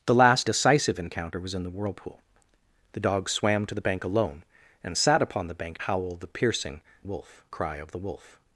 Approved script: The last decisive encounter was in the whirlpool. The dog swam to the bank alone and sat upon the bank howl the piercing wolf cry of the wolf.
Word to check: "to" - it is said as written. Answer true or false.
true